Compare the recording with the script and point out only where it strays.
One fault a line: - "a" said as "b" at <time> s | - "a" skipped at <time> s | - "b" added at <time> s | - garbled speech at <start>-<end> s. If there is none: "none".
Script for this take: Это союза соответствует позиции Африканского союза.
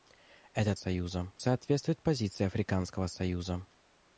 none